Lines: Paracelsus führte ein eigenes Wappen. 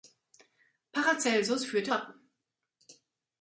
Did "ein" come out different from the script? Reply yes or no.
yes